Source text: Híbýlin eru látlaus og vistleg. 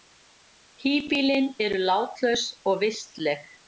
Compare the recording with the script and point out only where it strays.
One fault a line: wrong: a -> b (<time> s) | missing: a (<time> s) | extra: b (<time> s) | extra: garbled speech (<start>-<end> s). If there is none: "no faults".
no faults